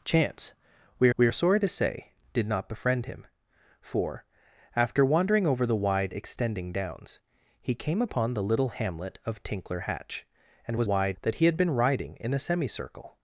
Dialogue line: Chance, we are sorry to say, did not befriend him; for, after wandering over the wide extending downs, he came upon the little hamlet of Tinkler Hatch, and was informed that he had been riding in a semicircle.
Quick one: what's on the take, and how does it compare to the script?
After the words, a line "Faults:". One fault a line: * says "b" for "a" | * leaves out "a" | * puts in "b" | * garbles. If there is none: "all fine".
Chance, we we are sorry to say, did not befriend him; for, after wandering over the wide extending downs, he came upon the little hamlet of Tinkler Hatch, and was wide that he had been riding in a semicircle.
Faults:
* puts in "we"
* says "wide" for "informed"